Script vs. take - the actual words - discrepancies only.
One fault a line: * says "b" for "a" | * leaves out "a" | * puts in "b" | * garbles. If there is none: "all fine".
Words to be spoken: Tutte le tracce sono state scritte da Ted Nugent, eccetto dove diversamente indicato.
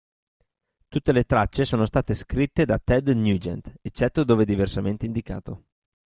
all fine